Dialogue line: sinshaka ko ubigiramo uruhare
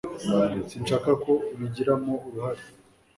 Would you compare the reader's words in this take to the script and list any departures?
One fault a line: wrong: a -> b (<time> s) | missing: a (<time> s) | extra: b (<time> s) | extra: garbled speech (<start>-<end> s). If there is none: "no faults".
no faults